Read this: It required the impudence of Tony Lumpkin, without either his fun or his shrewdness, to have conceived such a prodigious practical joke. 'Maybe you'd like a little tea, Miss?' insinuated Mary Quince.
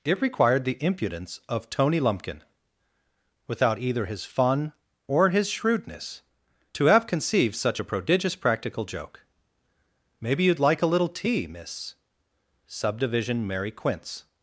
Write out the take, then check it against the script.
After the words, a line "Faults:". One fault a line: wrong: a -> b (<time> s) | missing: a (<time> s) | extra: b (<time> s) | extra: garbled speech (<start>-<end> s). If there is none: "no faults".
It required the impudence of Tony Lumpkin, without either his fun or his shrewdness, to have conceived such a prodigious practical joke. 'Maybe you'd like a little tea, Miss?' subdivision Mary Quince.
Faults:
wrong: insinuated -> subdivision (12.6 s)